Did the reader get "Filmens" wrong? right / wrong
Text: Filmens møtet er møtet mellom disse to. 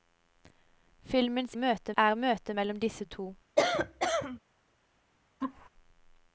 right